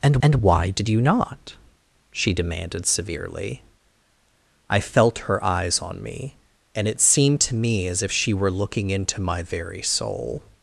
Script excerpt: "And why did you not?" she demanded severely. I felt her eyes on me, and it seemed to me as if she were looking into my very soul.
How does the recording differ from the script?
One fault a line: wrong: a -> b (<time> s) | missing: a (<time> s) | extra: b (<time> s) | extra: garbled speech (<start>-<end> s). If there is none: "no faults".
extra: and (0.2 s)